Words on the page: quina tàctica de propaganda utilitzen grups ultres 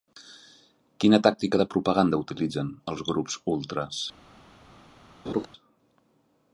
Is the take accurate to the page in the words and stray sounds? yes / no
no